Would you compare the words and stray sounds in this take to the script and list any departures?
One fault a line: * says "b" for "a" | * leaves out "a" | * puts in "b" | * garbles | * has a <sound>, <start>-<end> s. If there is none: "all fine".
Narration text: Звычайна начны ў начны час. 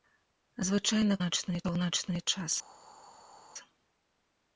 all fine